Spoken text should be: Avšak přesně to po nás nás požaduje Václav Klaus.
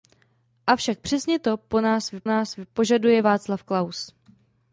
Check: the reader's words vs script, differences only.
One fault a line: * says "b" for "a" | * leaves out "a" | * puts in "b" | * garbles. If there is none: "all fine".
all fine